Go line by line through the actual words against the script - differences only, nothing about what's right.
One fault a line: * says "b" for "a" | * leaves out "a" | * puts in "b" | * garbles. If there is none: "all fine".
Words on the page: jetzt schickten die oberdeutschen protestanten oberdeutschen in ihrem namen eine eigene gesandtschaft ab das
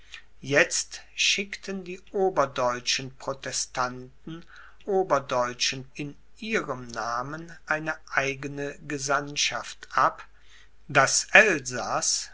all fine